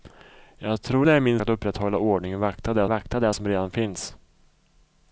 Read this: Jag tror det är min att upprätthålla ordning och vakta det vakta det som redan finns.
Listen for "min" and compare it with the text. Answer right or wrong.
right